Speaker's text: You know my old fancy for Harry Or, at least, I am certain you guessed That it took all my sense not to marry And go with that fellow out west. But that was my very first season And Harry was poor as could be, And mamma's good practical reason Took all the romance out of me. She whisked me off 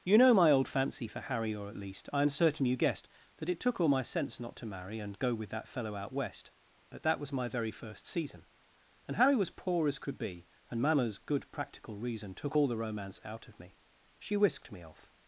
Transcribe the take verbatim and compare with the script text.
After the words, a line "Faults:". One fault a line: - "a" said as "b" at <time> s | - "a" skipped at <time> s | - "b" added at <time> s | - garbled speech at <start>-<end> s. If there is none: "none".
You know my old fancy for Harry Or, at least, I am certain you guessed That it took all my sense not to marry And go with that fellow out west. But that was my very first season And Harry was poor as could be, And mamma's good practical reason Took all the romance out of me. She whisked me off
Faults:
none